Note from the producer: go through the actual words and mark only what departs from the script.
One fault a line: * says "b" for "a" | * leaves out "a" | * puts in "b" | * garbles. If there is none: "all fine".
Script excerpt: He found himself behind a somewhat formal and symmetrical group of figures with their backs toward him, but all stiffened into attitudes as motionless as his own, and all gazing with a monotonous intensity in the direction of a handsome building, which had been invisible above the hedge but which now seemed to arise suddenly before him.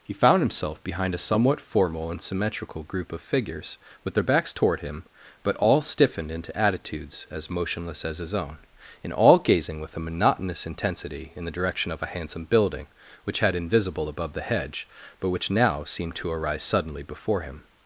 * leaves out "been"